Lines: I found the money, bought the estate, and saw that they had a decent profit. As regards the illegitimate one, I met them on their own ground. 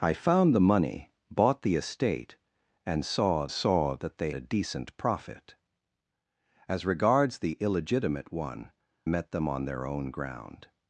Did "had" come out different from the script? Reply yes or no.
yes